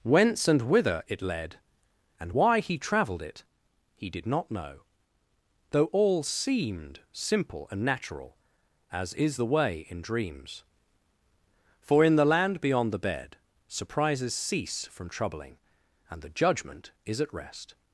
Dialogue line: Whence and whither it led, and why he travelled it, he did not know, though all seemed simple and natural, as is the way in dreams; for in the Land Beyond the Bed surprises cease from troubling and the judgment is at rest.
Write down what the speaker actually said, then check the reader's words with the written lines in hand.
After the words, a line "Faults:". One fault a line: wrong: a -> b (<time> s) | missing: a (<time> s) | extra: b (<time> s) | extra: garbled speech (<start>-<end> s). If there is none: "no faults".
Whence and whither it led, and why he travelled it, he did not know, though all seemed simple and natural, as is the way in dreams; for in the Land Beyond the Bed surprises cease from troubling and the judgment is at rest.
Faults:
no faults